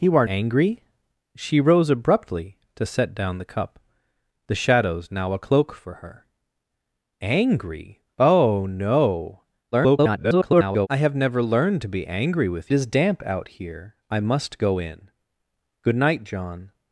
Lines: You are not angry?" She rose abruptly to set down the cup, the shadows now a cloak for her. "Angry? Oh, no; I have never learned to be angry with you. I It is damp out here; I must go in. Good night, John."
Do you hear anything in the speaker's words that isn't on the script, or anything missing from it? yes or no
yes